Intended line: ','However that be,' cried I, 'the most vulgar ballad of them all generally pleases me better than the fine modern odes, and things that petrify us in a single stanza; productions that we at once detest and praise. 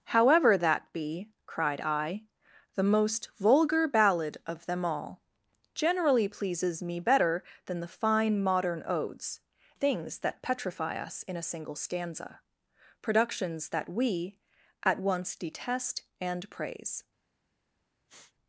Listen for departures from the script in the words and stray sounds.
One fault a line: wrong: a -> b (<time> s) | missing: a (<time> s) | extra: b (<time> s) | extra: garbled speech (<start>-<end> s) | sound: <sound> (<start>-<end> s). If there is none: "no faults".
missing: and (9.4 s)
sound: sniff (18.1-18.3 s)